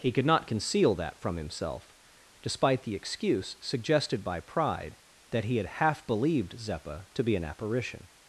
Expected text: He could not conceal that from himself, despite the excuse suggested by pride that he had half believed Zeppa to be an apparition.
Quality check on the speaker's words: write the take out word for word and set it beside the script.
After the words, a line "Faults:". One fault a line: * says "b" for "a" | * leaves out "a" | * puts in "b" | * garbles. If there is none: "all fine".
He could not conceal that from himself, despite the excuse suggested by pride that he had half believed Zeppa to be an apparition.
Faults:
all fine